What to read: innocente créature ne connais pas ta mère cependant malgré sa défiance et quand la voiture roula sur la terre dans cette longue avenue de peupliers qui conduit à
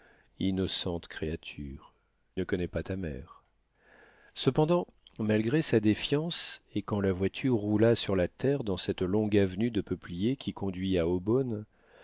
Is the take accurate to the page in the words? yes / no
yes